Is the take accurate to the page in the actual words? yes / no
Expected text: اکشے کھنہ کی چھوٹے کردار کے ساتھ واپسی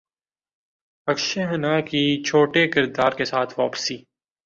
yes